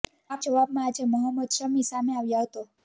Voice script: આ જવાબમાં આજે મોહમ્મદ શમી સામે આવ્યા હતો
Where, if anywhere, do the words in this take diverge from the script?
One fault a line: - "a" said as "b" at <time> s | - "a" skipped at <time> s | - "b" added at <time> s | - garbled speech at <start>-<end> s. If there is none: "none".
none